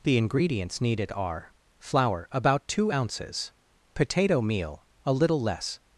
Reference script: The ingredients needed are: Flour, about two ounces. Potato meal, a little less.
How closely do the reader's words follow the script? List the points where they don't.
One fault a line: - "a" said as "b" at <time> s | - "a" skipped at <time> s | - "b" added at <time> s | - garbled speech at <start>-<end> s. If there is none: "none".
none